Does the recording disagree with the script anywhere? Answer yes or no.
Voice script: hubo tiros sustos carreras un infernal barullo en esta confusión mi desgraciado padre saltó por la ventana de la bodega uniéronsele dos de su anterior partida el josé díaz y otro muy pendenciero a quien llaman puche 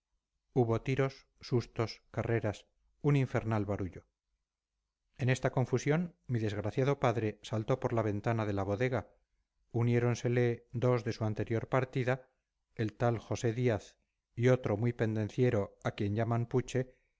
yes